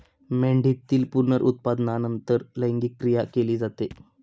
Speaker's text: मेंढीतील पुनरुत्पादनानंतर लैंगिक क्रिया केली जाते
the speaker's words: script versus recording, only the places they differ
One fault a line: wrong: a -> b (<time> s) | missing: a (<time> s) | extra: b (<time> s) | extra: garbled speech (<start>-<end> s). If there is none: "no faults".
no faults